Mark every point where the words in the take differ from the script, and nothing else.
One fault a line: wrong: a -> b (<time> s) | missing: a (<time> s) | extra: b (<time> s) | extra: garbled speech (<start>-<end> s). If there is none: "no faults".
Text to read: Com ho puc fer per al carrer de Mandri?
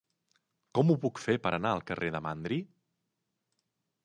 extra: anar (1.6 s)